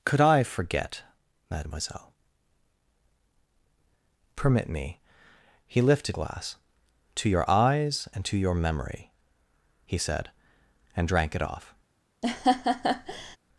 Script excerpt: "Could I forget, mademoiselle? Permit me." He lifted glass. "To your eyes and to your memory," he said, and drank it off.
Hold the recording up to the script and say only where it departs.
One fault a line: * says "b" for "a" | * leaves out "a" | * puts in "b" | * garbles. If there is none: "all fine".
all fine